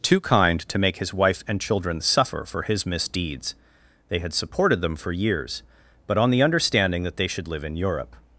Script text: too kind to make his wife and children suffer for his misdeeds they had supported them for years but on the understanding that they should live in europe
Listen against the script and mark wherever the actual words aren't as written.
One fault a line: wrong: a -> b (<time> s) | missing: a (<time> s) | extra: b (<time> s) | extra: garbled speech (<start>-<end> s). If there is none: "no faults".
no faults